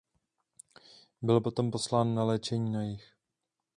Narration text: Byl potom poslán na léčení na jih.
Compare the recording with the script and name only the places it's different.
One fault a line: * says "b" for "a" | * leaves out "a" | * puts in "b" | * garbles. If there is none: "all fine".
all fine